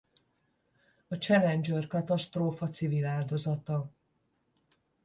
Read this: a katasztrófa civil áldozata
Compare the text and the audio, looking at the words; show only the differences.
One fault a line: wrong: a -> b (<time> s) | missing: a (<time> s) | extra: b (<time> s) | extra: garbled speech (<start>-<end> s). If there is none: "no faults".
extra: challenger (1.1 s)